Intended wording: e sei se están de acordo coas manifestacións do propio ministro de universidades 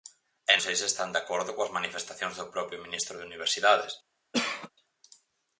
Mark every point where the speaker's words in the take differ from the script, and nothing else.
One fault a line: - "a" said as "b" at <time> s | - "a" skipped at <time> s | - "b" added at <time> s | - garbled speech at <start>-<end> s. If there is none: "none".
none